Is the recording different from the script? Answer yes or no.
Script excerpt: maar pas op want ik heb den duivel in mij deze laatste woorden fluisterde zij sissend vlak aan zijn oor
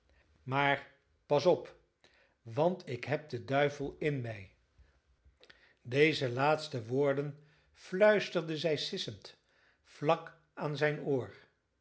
no